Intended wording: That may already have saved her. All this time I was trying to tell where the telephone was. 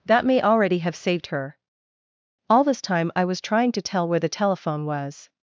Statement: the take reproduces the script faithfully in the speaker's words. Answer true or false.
true